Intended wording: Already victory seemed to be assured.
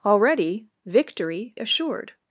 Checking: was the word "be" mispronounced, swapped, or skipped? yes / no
yes